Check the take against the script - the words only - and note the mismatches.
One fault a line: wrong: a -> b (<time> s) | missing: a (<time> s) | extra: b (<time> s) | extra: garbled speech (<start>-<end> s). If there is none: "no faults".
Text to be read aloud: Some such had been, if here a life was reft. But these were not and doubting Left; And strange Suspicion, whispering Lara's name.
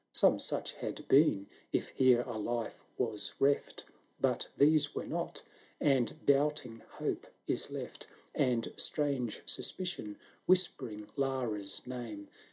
extra: Hope is (6.8 s)